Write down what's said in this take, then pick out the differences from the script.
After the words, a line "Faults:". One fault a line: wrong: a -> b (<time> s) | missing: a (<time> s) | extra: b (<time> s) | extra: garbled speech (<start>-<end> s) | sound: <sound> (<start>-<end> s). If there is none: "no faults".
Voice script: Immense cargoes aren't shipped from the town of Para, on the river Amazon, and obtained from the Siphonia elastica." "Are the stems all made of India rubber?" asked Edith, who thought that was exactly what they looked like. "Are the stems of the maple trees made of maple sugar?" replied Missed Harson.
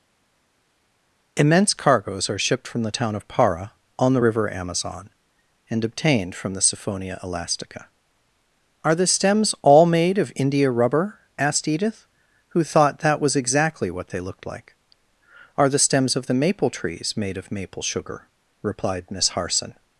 Immense cargoes are shipped from the town of Para, on the river Amazon, and obtained from the Siphonia elastica." "Are the stems all made of India rubber?" asked Edith, who thought that was exactly what they looked like. "Are the stems of the maple trees made of maple sugar?" replied Miss Harson.
Faults:
wrong: aren't -> are (2.3 s)
wrong: Missed -> Miss (19.1 s)